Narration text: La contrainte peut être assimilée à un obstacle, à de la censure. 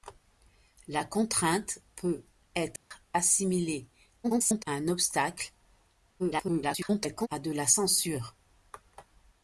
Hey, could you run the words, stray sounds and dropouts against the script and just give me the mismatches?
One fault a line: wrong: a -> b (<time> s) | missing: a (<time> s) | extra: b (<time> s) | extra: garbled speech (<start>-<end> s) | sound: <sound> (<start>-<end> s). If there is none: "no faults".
sound: dropout (2.8-2.9 s)
extra: garbled speech (4.2-4.6 s)
extra: garbled speech (6.2-7.3 s)